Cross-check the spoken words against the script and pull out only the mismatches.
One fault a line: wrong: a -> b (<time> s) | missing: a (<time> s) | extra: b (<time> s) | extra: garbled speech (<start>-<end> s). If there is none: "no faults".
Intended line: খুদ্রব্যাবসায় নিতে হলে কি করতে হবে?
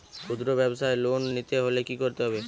extra: লোন (1.0 s)